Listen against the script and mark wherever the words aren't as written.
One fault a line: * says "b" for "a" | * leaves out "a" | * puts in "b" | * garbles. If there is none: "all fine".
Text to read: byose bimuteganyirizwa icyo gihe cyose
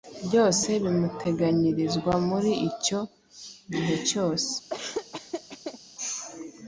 * puts in "muri"